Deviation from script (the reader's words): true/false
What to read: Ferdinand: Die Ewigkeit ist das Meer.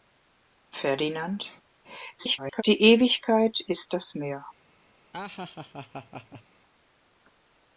true